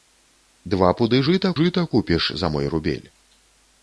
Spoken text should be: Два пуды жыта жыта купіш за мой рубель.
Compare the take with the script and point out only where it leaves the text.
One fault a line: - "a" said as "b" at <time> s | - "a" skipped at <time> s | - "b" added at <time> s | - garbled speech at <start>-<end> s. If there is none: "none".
none